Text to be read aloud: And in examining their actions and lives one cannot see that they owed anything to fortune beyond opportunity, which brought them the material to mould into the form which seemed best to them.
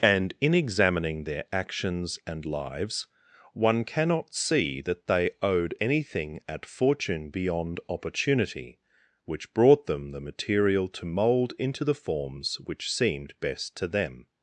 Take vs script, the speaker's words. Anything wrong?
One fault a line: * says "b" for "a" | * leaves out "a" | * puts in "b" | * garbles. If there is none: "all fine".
* says "at" for "to"
* says "forms" for "form"